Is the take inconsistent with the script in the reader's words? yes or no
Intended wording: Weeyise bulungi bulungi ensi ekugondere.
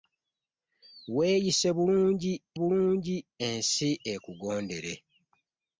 no